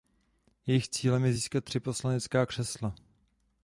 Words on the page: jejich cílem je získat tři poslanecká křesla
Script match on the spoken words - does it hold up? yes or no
yes